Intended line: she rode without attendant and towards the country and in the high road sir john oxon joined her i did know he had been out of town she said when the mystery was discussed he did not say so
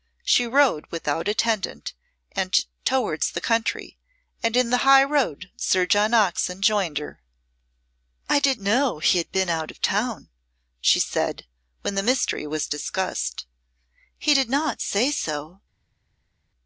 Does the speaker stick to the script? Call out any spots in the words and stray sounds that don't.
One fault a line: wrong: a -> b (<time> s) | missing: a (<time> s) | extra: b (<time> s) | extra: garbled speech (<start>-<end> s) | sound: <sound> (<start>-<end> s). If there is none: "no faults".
no faults